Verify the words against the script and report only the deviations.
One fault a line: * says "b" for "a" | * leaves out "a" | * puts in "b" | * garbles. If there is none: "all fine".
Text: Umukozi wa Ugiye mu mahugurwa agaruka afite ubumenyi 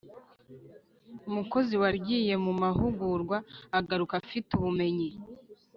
all fine